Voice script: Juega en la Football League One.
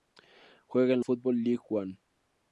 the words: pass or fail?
fail